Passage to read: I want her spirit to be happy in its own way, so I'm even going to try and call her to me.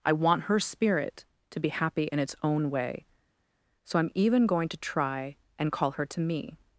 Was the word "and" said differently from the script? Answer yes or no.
no